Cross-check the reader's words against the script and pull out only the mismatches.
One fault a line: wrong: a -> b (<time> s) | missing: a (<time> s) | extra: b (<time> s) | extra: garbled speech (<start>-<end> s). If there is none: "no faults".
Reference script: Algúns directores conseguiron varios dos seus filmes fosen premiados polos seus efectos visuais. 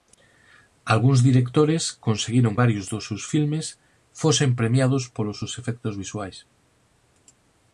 no faults